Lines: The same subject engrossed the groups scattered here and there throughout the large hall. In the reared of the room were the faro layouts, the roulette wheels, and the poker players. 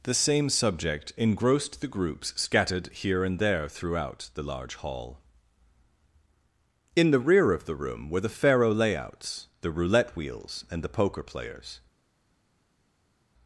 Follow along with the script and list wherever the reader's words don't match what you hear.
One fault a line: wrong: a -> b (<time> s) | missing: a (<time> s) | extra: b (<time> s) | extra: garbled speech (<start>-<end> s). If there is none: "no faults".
wrong: reared -> rear (7.2 s)